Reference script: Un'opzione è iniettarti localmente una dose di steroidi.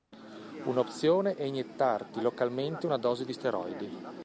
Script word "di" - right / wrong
right